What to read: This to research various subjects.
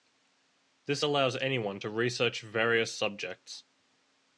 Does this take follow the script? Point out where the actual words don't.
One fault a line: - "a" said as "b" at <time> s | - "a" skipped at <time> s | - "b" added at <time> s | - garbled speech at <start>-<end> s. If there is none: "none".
- "allows anyone" added at 1.0 s